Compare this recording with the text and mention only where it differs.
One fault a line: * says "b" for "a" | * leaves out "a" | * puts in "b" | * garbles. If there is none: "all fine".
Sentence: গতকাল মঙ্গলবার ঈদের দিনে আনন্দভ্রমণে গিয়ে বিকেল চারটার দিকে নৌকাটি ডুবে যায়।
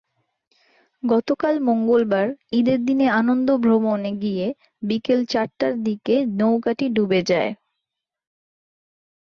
all fine